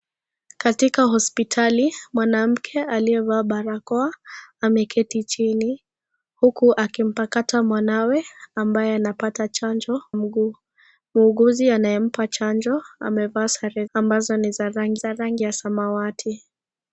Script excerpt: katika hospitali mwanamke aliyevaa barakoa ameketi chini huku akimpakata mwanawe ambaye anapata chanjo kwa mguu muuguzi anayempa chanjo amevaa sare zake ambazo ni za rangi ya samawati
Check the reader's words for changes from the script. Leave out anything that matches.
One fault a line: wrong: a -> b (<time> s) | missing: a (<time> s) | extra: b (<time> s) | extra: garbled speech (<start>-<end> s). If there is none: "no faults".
missing: kwa (10.0 s)
missing: zake (13.8 s)
extra: za rangi (15.0 s)